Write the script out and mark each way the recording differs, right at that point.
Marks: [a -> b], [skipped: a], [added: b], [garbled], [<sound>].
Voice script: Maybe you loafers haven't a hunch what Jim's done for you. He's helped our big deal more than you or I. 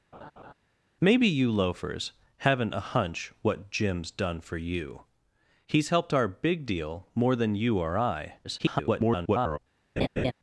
[laugh] Maybe you loafers haven't a hunch what Jim's done for you. He's helped our big deal more than you or I. [garbled] [laugh]